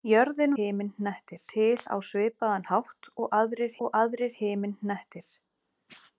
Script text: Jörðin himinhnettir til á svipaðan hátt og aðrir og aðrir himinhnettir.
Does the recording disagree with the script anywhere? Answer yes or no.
no